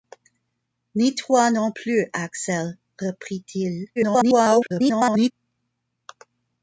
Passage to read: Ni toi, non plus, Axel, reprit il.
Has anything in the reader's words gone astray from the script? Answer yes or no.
yes